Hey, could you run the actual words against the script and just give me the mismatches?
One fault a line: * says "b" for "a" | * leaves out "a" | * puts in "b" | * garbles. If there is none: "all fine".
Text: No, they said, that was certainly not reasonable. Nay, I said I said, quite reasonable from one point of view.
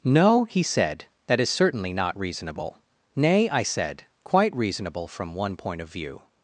* says "he" for "they"
* says "is" for "was"
* leaves out "I said"